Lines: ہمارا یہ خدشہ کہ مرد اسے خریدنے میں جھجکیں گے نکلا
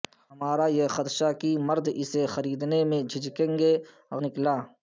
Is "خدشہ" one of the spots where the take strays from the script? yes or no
no